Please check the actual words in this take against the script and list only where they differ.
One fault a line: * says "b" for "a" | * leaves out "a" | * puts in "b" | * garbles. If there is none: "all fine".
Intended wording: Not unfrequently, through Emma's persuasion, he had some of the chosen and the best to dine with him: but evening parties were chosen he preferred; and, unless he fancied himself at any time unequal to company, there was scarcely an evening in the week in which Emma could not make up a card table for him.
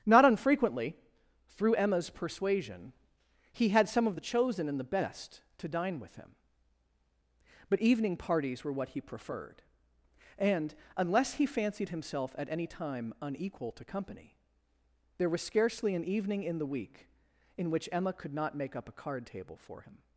* says "what" for "chosen"